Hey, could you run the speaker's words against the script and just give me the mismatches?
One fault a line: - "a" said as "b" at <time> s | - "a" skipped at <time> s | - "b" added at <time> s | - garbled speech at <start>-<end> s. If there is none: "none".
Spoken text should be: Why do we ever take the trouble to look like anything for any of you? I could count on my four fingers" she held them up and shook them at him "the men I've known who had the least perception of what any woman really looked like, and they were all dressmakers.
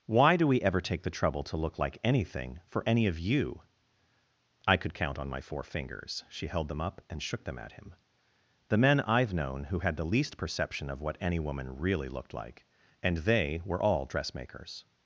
none